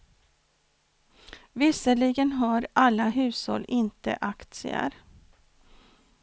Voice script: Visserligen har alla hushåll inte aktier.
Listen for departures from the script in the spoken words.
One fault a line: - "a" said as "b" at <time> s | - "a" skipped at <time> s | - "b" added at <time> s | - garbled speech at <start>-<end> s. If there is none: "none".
none